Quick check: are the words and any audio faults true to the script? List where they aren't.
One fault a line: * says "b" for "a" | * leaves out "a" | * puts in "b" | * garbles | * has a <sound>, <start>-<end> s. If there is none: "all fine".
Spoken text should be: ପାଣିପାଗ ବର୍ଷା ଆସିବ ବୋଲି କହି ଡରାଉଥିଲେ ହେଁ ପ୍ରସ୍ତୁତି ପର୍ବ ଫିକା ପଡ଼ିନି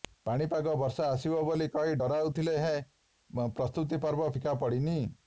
all fine